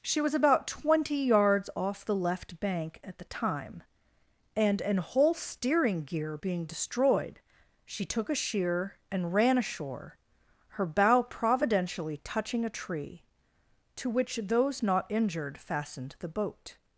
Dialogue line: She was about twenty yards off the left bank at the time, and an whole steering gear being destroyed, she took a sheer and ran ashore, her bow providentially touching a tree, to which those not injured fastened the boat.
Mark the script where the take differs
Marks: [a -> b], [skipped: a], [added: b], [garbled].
She was about twenty yards off the left bank at the time, and an whole steering gear being destroyed, she took a sheer and ran ashore, her bow providentially touching a tree, to which those not injured fastened the boat.